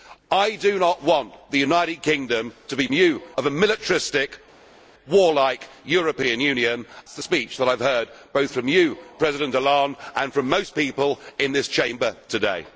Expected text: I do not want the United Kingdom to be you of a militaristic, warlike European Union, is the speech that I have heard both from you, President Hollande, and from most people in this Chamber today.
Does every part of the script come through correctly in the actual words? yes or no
yes